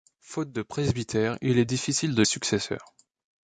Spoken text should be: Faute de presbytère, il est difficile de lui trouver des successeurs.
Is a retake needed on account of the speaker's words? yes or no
yes